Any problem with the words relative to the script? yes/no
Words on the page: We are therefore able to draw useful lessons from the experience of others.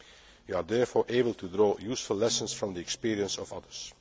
no